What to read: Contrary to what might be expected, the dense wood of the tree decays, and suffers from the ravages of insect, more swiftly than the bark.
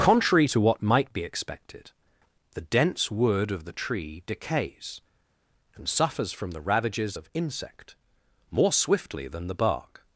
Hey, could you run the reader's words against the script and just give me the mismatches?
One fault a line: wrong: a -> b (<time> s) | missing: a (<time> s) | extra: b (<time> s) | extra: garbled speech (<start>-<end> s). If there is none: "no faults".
no faults